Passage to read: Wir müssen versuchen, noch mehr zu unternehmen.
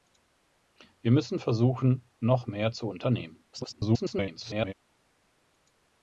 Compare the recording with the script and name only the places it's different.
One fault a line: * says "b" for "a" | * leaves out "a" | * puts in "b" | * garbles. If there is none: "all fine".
* garbles